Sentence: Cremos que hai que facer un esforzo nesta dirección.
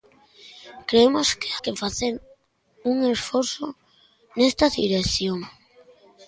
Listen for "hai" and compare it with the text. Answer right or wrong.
wrong